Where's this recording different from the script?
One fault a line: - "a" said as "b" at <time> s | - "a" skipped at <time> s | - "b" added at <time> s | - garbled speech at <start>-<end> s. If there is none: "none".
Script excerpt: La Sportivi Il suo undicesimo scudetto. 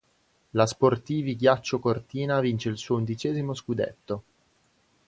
- "Ghiaccio Cortina vince" added at 1.4 s